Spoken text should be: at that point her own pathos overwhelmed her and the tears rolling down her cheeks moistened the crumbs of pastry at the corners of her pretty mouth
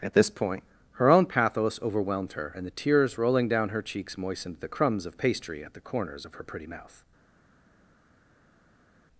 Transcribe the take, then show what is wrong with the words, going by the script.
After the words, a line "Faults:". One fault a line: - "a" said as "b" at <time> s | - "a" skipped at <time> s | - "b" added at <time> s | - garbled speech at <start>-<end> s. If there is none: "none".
at this point her own pathos overwhelmed her and the tears rolling down her cheeks moistened the crumbs of pastry at the corners of her pretty mouth
Faults:
- "that" said as "this" at 0.1 s